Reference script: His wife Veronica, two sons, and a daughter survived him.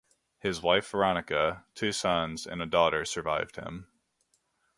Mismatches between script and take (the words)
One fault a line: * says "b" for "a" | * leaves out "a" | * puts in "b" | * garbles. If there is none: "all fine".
all fine